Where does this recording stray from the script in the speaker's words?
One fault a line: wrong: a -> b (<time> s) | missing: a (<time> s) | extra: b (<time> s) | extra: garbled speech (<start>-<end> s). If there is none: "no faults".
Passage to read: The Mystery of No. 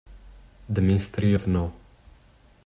no faults